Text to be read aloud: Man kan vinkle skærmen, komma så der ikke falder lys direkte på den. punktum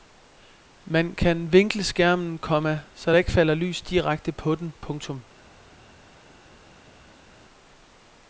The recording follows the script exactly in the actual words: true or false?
true